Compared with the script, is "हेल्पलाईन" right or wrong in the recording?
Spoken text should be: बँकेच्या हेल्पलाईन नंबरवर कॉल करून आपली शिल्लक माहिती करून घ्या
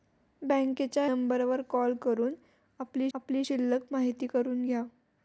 wrong